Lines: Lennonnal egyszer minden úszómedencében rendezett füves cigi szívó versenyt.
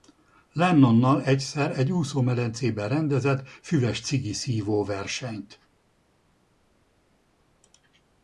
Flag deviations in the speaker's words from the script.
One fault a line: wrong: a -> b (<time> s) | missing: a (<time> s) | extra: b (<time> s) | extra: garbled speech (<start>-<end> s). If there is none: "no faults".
wrong: minden -> egy (1.8 s)